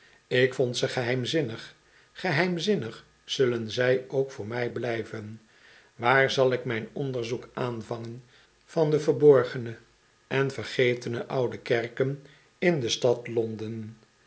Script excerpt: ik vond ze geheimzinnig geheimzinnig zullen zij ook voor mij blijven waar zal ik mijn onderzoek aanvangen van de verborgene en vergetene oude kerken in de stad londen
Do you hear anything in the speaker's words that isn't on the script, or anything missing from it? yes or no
no